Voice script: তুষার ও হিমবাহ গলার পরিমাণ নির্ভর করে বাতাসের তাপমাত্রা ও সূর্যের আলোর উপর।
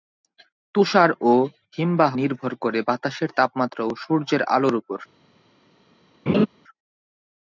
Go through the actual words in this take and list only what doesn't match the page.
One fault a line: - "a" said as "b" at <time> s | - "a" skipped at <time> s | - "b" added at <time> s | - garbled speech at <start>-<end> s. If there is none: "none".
- "গলার পরিমাণ" skipped at 2.1 s